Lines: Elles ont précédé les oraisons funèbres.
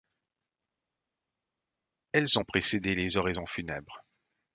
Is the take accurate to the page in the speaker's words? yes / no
yes